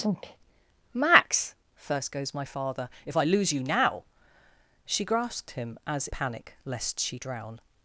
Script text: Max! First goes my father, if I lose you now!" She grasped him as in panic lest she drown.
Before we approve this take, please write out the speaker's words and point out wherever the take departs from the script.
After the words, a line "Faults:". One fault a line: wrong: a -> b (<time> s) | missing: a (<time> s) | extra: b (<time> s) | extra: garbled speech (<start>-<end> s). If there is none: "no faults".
Max! First goes my father, if I lose you now!" She grasped him as panic lest she drown.
Faults:
missing: in (6.1 s)